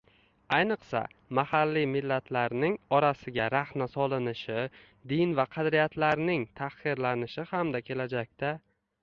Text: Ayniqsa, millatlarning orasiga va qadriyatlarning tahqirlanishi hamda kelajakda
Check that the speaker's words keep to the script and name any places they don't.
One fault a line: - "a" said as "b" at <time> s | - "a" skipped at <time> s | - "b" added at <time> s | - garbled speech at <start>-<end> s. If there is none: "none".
- "mahalliy" added at 1.4 s
- "rahna solinishi din" added at 3.5 s